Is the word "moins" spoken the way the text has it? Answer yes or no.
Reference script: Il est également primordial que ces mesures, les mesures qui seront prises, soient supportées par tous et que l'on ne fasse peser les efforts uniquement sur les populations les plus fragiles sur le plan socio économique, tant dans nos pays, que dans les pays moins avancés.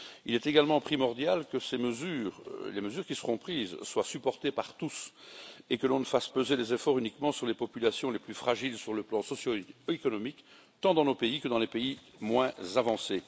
yes